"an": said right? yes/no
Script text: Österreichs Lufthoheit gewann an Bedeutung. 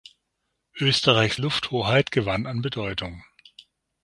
yes